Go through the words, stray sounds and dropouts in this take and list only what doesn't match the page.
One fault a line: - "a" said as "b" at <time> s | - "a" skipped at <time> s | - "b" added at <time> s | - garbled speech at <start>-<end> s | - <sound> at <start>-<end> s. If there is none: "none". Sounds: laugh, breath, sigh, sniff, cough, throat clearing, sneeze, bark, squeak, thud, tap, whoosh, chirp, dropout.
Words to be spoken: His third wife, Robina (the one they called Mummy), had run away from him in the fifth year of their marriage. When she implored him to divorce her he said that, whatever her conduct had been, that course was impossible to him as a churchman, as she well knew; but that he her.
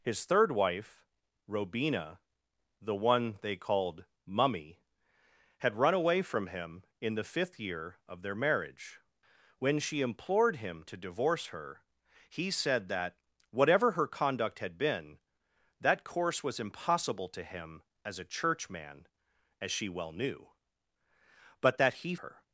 none